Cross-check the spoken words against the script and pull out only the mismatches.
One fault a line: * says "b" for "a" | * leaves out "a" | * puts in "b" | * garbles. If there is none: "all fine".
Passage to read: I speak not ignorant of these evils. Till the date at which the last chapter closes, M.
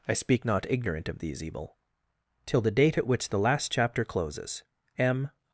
* says "evil" for "evils"